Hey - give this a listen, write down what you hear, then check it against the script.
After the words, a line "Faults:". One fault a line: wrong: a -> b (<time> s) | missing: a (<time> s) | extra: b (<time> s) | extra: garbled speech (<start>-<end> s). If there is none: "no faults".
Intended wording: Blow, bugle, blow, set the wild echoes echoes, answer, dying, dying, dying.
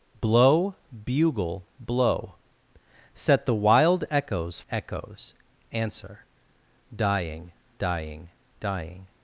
Blow, bugle, blow, set the wild echoes echoes, answer, dying, dying, dying.
Faults:
no faults